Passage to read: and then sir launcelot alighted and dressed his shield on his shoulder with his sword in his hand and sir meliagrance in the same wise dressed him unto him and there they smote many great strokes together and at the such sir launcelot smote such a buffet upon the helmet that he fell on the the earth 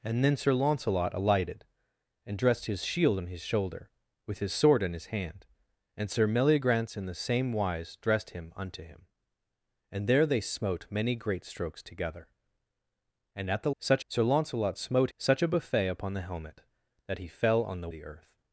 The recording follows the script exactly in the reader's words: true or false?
true